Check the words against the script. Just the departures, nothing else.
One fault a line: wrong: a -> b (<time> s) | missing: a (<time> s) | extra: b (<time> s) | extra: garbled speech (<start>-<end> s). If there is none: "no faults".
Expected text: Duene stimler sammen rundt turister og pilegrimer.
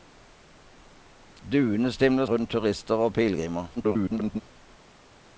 missing: sammen (2.2 s)
extra: garbled speech (3.8-4.4 s)